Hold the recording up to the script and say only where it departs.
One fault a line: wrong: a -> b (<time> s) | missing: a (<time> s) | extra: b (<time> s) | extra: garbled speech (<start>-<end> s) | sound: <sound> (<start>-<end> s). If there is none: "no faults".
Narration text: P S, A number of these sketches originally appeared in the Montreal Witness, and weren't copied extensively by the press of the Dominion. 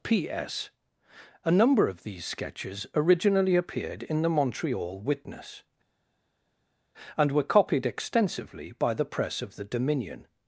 wrong: weren't -> were (7.3 s)